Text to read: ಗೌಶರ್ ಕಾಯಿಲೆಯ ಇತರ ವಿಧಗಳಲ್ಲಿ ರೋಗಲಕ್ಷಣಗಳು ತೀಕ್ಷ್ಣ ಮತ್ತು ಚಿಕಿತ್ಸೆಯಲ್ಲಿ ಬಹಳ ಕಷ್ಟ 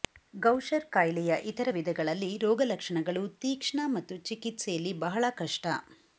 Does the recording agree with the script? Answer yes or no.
yes